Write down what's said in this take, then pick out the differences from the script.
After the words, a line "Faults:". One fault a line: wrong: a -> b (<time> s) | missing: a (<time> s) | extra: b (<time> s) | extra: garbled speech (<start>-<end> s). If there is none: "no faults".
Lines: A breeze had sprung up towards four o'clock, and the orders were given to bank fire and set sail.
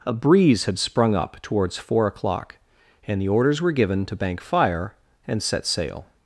A breeze had sprung up towards four o'clock, and the orders were given to bank fire and set sail.
Faults:
no faults